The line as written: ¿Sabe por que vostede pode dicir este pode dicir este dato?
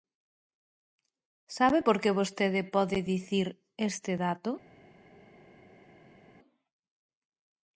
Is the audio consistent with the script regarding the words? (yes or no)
no